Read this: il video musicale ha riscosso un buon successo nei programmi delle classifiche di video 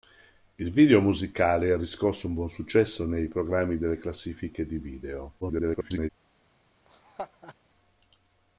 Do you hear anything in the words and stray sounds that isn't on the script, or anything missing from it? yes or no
yes